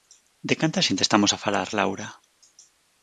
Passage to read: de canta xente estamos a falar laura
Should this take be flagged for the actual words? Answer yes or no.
no